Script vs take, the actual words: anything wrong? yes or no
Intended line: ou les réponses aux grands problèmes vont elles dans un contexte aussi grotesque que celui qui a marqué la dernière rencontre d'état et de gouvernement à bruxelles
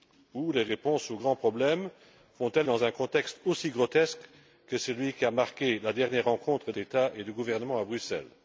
no